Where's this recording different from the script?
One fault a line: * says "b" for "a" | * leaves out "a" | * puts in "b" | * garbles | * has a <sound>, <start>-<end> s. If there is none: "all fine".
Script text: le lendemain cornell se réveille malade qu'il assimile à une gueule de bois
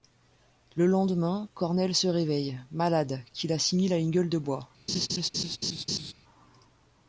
* has a laugh, 4.9-6.1 s